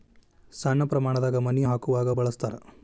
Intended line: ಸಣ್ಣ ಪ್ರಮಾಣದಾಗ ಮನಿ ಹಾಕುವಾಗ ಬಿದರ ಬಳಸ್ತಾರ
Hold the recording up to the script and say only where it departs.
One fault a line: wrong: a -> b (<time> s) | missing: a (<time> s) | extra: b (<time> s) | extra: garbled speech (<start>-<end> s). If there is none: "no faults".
missing: ಬಿದರ (2.1 s)